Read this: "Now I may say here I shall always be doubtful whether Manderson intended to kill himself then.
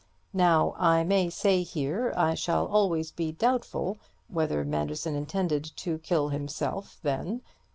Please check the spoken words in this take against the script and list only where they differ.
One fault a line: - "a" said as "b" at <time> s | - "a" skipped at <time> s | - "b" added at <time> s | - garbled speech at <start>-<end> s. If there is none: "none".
none